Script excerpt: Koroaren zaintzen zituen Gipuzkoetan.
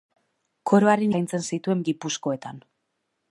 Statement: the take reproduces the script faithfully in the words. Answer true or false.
true